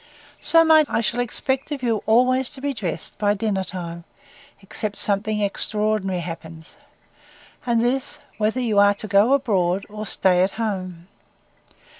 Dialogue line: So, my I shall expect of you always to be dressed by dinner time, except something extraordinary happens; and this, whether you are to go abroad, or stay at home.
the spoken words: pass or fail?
pass